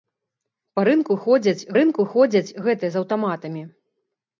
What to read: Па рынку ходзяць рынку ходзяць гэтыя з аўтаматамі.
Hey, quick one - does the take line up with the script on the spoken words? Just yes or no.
yes